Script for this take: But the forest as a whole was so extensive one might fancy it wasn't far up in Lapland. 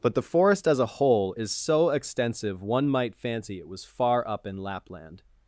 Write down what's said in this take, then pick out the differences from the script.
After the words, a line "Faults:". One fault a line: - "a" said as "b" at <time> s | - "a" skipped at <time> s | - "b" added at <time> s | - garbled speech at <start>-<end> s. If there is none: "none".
But the forest as a whole is so extensive one might fancy it was far up in Lapland.
Faults:
- "was" said as "is" at 1.3 s
- "wasn't" said as "was" at 3.7 s